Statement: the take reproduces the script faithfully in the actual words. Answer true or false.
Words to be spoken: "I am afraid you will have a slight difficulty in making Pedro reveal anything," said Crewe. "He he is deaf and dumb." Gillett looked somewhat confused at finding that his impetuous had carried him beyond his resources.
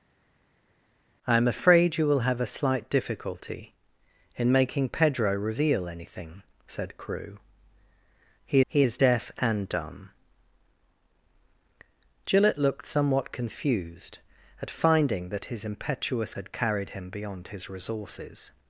true